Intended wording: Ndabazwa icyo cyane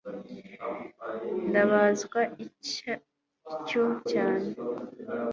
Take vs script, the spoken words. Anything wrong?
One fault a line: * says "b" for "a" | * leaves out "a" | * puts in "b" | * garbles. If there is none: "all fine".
all fine